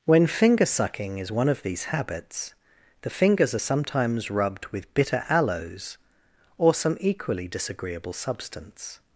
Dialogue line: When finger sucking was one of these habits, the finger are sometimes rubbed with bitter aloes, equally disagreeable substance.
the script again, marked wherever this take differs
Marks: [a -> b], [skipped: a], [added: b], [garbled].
When finger sucking [was -> is] one of these habits, the [finger -> fingers] are sometimes rubbed with bitter aloes, [added: or some] equally disagreeable substance.